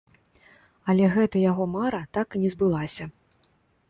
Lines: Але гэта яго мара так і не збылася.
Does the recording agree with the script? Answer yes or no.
yes